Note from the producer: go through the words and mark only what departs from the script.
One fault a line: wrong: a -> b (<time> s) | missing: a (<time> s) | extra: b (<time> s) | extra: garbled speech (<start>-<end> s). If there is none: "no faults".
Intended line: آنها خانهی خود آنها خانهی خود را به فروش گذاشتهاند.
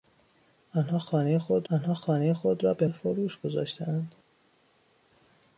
no faults